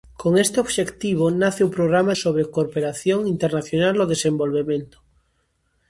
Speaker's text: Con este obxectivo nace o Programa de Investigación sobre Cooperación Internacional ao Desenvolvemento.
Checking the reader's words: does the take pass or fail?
fail